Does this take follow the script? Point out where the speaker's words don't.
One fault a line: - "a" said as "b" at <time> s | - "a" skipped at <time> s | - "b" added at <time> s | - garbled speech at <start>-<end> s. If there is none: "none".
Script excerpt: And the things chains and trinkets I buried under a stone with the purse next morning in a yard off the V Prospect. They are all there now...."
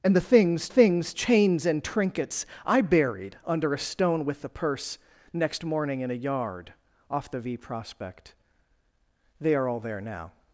- "things" added at 0.7 s